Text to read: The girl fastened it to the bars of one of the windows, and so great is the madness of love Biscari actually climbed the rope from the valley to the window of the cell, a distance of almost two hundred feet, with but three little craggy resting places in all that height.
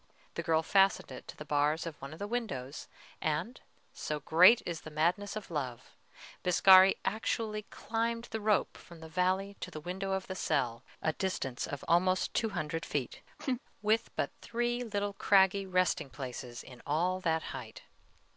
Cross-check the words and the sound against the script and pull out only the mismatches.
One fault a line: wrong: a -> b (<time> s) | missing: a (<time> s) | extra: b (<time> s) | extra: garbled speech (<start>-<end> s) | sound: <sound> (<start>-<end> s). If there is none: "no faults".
sound: laugh (13.4-13.6 s)